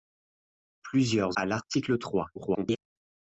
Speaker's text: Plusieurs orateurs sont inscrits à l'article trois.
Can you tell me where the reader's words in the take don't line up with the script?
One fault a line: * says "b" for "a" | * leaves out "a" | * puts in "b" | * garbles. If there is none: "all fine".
* leaves out "orateurs sont inscrits"
* garbles